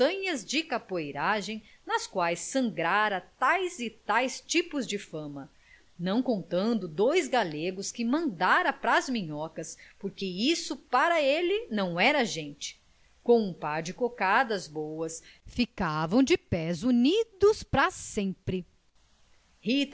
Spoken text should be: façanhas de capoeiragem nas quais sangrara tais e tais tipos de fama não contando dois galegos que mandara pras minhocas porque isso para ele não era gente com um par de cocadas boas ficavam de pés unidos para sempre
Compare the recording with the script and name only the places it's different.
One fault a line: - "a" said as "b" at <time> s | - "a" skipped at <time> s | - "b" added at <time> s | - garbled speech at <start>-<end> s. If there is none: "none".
none